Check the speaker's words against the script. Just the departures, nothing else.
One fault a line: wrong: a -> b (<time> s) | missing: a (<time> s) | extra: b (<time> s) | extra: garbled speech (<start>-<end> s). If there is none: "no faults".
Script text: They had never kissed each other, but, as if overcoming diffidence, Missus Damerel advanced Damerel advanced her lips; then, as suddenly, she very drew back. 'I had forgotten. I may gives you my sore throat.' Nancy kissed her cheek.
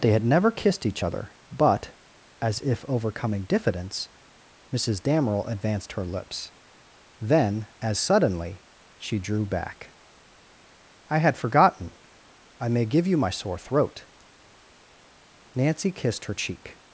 missing: Damerel advanced (5.9 s)
missing: very (9.2 s)
wrong: gives -> give (12.9 s)